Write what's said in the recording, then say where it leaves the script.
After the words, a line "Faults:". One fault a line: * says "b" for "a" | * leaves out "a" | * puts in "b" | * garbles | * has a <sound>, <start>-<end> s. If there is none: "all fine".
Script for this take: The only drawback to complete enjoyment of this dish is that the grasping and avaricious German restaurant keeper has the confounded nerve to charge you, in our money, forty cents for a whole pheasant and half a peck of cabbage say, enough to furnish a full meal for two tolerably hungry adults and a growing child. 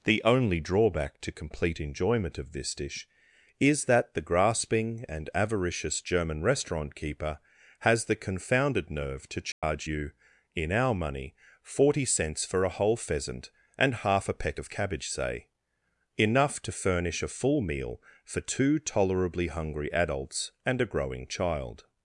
The only drawback to complete enjoyment of this dish is that the grasping and avaricious German restaurant keeper has the confounded nerve to charge you, in our money, forty cents for a whole pheasant and half a peck of cabbage say, enough to furnish a full meal for two tolerably hungry adults and a growing child.
Faults:
* has a dropout, 9.5-9.6 s